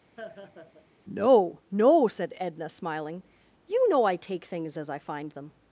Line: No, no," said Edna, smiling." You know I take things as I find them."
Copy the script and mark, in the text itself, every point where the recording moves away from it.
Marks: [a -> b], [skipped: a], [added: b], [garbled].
No, no," said Edna, smiling." You know I take things as I find them."